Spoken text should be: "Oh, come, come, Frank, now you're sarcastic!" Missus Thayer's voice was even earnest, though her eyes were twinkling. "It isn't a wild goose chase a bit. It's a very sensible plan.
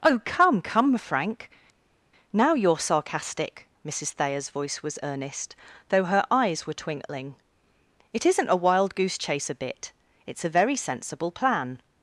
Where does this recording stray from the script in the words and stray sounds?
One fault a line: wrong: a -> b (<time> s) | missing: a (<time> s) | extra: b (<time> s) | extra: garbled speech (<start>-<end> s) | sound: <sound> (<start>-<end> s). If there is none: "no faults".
missing: even (5.0 s)